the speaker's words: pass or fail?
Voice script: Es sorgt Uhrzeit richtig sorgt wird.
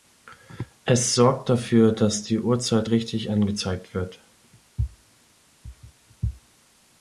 fail